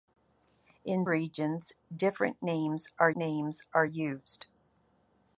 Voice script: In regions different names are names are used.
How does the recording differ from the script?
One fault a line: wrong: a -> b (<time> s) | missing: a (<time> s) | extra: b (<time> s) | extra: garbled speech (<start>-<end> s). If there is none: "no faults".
no faults